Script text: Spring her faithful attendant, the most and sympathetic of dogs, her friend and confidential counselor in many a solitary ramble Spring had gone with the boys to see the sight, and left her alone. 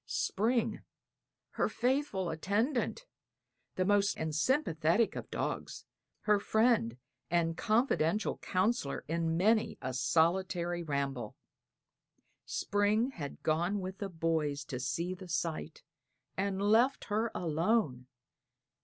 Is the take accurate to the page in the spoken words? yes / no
yes